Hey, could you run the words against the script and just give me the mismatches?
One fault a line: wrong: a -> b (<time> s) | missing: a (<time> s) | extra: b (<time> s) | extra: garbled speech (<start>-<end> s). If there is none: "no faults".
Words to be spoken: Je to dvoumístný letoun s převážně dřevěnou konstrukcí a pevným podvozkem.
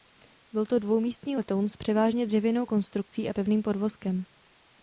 wrong: Je -> Byl (0.5 s)